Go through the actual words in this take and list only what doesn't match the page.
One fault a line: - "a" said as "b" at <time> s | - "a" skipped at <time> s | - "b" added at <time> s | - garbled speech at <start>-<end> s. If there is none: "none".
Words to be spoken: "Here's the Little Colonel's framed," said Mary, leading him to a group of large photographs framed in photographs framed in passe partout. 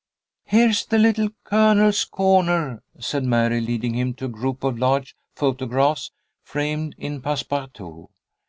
- "framed" said as "corner" at 2.0 s
- "photographs framed in" skipped at 7.2 s